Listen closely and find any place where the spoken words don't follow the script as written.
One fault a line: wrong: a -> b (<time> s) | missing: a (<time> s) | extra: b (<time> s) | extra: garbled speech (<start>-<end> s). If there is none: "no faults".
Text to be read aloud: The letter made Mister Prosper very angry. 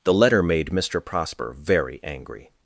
no faults